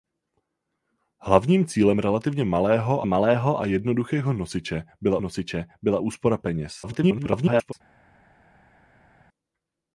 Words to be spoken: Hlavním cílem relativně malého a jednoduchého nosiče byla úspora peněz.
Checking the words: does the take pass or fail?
fail